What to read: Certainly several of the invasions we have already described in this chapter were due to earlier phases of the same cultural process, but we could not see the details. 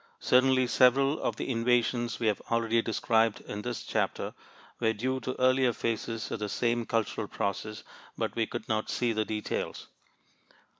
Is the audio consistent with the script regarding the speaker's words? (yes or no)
yes